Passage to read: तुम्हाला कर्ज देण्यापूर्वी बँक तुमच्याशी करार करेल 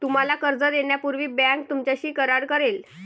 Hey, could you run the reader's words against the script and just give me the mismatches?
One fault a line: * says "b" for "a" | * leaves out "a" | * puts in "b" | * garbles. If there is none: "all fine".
all fine